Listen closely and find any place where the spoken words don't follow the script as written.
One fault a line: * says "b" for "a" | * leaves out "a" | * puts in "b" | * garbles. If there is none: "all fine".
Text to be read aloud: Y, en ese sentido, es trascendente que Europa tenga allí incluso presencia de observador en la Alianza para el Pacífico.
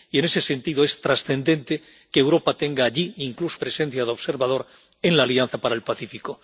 all fine